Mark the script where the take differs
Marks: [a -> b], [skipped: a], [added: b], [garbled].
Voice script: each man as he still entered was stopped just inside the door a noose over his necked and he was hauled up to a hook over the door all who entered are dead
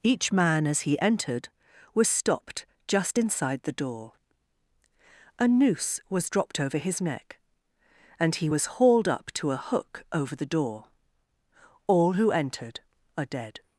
each man as he [skipped: still] entered was stopped just inside the door a noose [added: was dropped] over his [necked -> neck] and he was hauled up to a hook over the door all who entered are dead